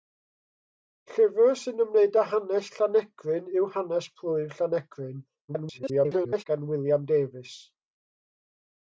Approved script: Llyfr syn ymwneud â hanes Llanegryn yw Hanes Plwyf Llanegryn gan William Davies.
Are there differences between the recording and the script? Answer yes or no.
yes